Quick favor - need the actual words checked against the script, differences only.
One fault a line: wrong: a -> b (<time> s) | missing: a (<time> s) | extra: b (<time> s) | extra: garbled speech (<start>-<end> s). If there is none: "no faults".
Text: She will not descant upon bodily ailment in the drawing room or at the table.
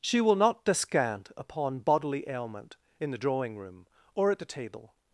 no faults